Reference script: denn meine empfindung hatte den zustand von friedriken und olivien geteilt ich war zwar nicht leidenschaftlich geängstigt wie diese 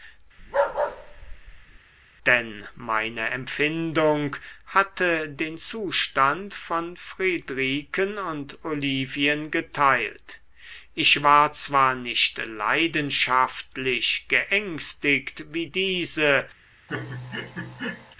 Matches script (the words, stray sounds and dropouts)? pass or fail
fail